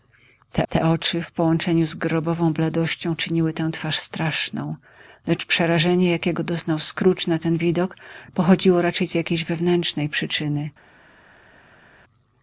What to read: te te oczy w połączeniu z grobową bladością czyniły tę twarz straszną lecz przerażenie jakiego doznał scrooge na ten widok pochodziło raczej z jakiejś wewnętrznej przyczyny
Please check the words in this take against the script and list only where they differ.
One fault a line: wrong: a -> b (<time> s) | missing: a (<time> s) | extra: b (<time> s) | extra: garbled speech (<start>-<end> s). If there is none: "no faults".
no faults